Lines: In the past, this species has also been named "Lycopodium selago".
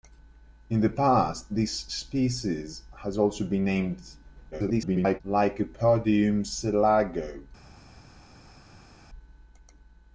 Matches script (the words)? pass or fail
fail